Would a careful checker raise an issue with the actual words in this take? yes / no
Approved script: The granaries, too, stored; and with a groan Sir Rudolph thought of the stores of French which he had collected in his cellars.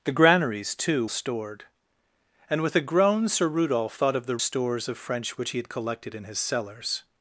no